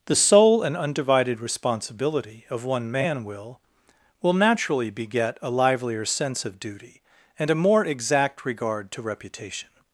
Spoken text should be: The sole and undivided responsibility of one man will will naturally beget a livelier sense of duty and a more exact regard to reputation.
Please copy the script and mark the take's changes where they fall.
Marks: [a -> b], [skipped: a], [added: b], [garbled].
The sole and undivided responsibility of one man will will naturally beget a livelier sense of duty and a more exact regard to reputation.